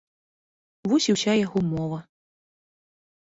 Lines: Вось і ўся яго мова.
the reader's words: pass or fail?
pass